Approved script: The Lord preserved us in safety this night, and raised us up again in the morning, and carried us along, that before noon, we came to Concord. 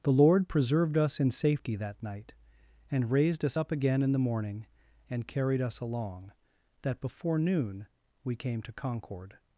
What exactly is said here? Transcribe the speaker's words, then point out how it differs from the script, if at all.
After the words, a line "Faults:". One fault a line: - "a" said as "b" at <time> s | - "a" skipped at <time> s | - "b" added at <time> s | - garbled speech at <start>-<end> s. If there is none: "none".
The Lord preserved us in safety that night, and raised us up again in the morning, and carried us along, that before noon, we came to Concord.
Faults:
- "this" said as "that" at 1.8 s